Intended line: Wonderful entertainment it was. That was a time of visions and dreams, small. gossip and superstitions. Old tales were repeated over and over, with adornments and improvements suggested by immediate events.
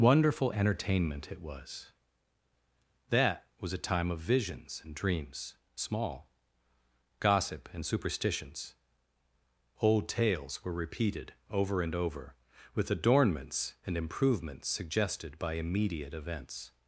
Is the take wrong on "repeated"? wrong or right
right